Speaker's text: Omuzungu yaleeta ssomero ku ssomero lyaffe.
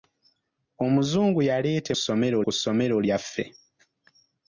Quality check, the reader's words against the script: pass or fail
pass